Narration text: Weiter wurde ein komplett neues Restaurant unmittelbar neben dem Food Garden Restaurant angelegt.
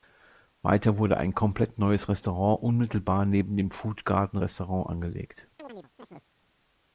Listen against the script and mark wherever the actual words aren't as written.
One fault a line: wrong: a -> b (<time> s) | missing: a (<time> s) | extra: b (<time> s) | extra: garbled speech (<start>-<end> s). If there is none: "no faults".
no faults